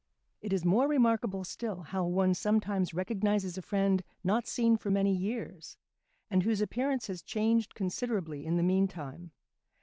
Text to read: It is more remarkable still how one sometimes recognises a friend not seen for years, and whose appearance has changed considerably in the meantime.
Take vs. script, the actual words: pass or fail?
fail